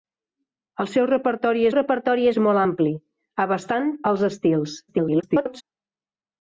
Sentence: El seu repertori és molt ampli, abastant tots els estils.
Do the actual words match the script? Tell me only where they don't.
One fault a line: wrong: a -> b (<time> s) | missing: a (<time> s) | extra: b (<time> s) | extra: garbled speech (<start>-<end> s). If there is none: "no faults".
extra: repertori (1.8 s)
missing: tots (3.9 s)
extra: garbled speech (4.9-5.6 s)